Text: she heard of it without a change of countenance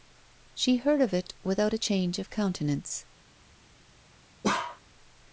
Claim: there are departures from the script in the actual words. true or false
false